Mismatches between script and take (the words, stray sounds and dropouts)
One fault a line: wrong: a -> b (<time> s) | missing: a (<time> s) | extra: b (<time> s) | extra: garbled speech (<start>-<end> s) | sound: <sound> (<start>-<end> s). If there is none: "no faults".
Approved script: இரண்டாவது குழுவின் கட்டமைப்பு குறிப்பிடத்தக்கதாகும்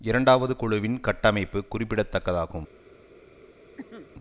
sound: cough (3.8-4.1 s)